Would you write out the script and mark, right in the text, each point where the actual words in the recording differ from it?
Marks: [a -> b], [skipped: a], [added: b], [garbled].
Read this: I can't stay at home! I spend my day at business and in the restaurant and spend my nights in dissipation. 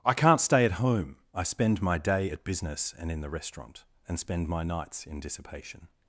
I can't stay at home! I spend my day at business and in the restaurant and spend my nights in dissipation.